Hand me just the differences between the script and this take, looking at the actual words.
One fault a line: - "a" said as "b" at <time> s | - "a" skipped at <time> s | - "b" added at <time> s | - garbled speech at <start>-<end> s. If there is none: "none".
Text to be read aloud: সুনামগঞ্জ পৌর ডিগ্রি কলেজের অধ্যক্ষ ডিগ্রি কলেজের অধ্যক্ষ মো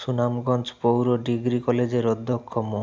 - "ডিগ্রি কলেজের অধ্যক্ষ" skipped at 2.5 s